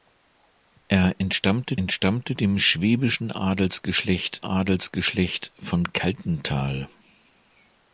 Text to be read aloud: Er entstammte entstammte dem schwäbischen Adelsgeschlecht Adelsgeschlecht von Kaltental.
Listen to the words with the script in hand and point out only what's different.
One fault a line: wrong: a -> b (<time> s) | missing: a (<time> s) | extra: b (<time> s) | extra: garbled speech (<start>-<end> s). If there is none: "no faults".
no faults